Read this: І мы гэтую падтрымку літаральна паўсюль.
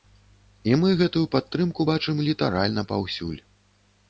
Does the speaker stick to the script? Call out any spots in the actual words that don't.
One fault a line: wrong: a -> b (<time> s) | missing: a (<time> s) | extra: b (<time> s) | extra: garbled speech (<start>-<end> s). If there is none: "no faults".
extra: бачым (1.9 s)